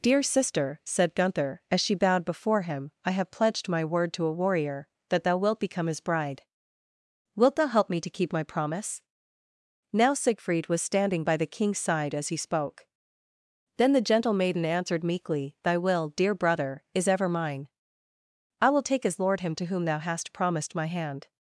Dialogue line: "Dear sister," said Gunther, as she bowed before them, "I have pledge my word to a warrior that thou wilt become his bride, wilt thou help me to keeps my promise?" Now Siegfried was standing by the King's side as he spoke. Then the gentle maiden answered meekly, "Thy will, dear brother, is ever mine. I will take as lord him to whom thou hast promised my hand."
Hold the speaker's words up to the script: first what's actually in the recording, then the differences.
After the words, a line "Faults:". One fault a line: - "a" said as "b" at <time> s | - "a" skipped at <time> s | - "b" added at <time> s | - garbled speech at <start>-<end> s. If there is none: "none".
"Dear sister," said Gunther, as she bowed before him, "I have pledged my word to a warrior that thou wilt become his bride, wilt thou help me to keep my promise?" Now Siegfried was standing by the King's side as he spoke. Then the gentle maiden answered meekly, "Thy will, dear brother, is ever mine. I will take as lord him to whom thou hast promised my hand."
Faults:
- "them" said as "him" at 2.6 s
- "pledge" said as "pledged" at 3.3 s
- "keeps" said as "keep" at 8.1 s